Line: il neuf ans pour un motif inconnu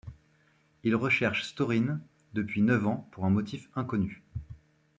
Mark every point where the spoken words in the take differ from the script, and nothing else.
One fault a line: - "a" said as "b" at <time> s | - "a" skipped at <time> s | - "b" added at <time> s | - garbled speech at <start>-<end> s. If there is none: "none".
- "recherche storine depuis" added at 0.9 s